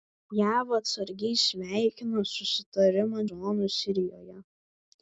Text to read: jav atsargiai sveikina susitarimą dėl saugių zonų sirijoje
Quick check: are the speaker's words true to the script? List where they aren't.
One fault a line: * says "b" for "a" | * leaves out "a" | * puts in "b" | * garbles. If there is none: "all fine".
* leaves out "dėl saugių"